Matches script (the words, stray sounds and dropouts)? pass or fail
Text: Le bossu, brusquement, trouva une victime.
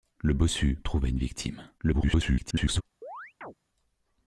fail